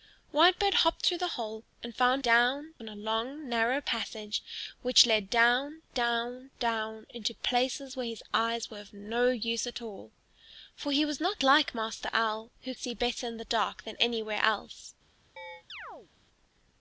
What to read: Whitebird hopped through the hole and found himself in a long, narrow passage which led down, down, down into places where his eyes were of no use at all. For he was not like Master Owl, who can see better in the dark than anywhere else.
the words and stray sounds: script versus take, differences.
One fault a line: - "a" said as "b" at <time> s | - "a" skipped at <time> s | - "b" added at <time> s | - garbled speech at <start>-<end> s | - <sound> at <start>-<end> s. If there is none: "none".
- "himself" said as "down" at 2.2 s
- "can" skipped at 12.7 s
- chirp at 15.4-16.1 s